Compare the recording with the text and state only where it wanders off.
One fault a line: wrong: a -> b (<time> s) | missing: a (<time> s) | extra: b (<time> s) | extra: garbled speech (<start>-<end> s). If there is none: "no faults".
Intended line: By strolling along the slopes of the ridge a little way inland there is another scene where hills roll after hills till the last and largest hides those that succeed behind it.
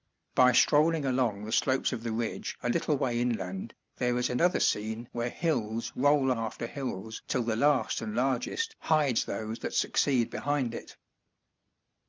no faults